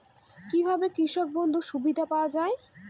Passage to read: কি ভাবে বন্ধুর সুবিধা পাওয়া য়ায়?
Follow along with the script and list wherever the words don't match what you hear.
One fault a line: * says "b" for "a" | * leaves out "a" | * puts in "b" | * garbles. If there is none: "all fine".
* puts in "কৃষক"